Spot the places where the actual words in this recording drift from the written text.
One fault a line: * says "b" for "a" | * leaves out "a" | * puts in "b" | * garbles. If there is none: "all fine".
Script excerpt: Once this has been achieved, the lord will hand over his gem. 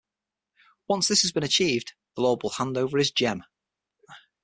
all fine